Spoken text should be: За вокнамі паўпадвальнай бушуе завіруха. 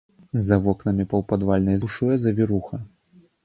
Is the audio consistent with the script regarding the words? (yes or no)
yes